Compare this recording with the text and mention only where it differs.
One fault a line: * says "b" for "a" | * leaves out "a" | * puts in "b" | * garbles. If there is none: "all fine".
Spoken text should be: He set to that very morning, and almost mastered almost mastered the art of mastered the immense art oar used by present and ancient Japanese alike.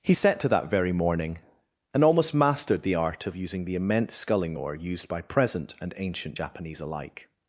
* leaves out "almost mastered"
* says "using" for "mastered"
* says "sculling" for "art"